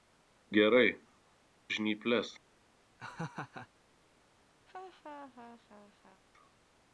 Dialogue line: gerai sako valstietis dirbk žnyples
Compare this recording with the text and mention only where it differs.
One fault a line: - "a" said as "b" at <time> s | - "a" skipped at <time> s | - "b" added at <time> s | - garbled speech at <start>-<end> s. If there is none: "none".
- "sako valstietis dirbk" skipped at 0.9 s